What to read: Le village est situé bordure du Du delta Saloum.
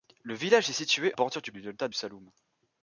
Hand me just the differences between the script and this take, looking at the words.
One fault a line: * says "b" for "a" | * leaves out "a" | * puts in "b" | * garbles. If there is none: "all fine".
all fine